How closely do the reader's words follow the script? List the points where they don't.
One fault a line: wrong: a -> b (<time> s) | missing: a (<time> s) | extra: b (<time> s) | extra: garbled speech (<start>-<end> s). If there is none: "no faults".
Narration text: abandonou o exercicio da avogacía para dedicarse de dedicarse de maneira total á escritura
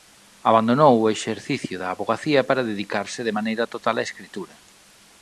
missing: dedicarse de (3.4 s)